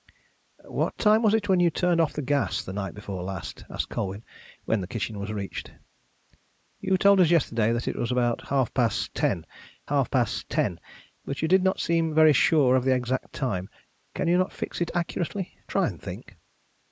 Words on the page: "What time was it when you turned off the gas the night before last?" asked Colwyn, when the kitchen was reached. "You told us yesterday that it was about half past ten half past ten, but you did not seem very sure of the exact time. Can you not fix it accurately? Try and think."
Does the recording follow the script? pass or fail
pass